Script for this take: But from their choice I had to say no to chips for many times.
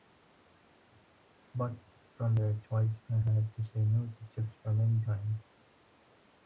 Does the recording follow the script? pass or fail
pass